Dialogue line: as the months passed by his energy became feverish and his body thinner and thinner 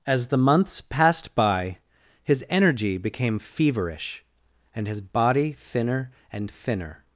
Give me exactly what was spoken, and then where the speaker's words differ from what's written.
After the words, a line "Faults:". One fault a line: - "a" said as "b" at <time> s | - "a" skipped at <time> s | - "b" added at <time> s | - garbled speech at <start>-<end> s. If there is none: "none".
as the months passed by his energy became feverish and his body thinner and thinner
Faults:
none